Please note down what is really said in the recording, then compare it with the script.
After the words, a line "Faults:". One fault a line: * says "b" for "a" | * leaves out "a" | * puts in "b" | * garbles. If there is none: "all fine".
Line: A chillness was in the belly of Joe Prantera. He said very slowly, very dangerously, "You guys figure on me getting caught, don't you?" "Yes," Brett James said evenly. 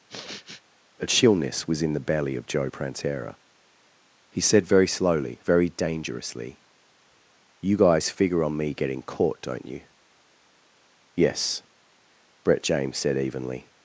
A chillness was in the belly of Joe Prantera. He said very slowly, very dangerously, "You guys figure on me getting caught, don't you?" "Yes," Brett James said evenly.
Faults:
all fine